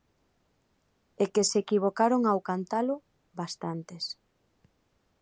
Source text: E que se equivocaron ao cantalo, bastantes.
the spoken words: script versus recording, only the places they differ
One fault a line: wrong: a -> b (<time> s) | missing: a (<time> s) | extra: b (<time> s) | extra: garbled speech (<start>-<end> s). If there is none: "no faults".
no faults